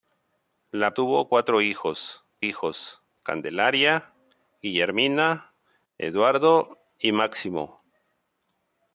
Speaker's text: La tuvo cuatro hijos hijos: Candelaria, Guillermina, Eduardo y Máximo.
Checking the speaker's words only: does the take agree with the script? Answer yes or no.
yes